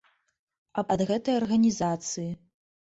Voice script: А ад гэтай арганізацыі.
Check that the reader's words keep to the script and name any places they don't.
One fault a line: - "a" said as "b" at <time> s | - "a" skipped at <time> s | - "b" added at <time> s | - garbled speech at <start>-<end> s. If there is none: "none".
none